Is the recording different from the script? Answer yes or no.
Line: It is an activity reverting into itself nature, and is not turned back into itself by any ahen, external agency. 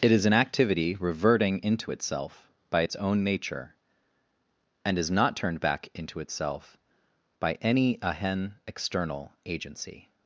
yes